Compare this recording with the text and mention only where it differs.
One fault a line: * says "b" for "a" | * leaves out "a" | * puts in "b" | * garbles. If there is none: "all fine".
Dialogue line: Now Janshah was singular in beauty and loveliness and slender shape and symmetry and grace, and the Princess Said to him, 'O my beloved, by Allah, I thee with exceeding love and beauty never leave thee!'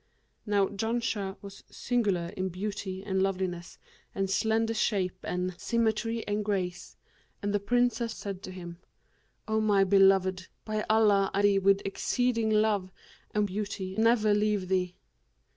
all fine